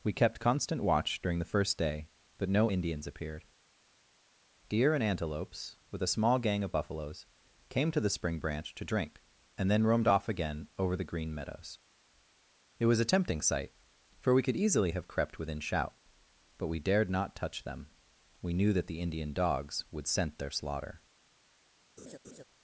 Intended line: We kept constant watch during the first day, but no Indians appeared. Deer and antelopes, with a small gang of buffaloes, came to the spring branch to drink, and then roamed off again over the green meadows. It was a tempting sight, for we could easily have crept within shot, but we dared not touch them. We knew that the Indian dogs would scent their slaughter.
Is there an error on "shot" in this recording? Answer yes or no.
yes